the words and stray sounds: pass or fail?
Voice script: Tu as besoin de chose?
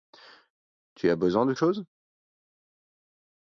pass